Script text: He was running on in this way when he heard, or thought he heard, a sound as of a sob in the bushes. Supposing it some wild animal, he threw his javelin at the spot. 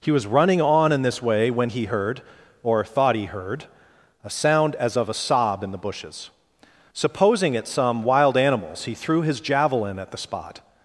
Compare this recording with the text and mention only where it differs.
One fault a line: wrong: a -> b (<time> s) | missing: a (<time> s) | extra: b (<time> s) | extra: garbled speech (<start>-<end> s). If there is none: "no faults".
wrong: animal -> animals (8.4 s)